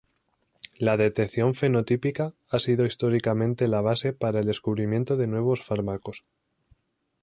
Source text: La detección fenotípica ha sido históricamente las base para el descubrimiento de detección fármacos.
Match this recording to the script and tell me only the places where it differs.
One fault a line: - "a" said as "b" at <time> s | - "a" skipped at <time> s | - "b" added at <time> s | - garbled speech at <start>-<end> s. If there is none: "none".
- "las" said as "la" at 3.7 s
- "detección" said as "nuevos" at 5.3 s